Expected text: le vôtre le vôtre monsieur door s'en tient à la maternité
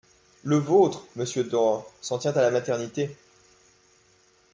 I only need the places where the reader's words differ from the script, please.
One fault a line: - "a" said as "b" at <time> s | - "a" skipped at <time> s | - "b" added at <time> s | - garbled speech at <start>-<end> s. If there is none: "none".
- "le vôtre" skipped at 1.1 s